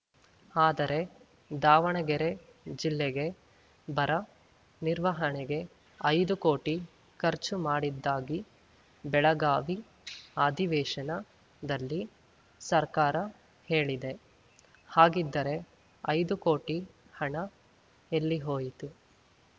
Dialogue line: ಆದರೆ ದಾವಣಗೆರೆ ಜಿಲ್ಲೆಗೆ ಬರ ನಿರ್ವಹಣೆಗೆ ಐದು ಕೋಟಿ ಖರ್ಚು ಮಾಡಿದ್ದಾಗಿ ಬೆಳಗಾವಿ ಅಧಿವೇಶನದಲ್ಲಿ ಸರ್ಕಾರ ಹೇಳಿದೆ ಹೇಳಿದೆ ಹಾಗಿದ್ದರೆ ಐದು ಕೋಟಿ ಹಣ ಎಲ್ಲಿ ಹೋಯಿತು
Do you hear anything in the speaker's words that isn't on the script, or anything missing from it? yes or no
yes